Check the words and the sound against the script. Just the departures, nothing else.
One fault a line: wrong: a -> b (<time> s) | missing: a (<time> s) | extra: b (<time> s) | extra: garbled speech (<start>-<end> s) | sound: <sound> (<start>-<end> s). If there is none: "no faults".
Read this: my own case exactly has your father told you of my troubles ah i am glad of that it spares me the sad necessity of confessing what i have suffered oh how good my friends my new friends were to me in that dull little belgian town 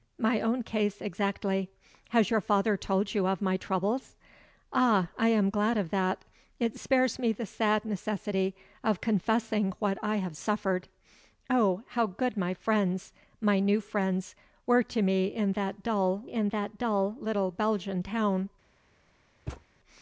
extra: in that dull (16.2 s)
sound: thud (19.5-19.6 s)